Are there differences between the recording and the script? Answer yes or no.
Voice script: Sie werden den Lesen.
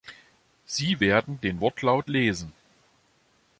yes